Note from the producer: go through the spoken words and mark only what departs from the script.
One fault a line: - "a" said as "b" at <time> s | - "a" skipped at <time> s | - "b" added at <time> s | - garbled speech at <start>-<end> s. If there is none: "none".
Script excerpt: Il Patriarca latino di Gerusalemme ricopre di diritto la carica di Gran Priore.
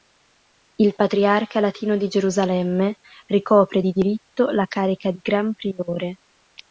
none